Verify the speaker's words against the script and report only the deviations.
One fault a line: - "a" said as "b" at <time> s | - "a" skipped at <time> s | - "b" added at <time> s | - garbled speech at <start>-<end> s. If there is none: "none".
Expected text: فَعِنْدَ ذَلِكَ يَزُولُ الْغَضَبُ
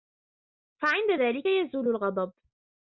none